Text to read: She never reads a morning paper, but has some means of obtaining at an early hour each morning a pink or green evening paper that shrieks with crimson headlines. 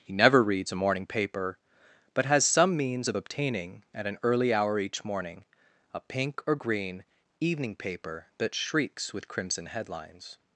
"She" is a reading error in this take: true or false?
true